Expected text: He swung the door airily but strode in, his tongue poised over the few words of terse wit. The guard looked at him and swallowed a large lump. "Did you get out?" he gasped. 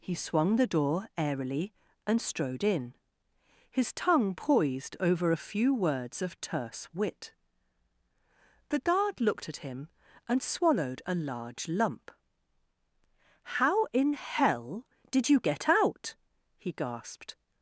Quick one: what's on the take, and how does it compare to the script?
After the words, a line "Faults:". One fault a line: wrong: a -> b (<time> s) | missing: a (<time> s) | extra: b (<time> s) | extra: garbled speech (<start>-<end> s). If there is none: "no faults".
He swung the door airily and strode in, his tongue poised over a few words of terse wit. The guard looked at him and swallowed a large lump. "How in hell did you get out?" he gasped.
Faults:
wrong: but -> and (2.1 s)
wrong: the -> a (5.3 s)
extra: How in hell (13.6 s)